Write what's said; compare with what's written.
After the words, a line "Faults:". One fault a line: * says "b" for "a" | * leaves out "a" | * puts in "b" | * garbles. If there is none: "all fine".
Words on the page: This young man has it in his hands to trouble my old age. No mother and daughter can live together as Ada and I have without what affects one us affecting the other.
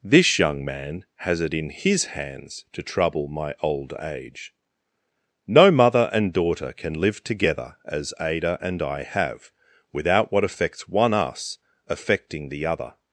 This young man has it in his hands to trouble my old age. No mother and daughter can live together as Ada and I have without what affects one us affecting the other.
Faults:
all fine